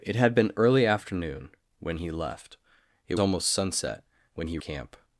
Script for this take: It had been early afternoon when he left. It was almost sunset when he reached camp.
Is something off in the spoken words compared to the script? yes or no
yes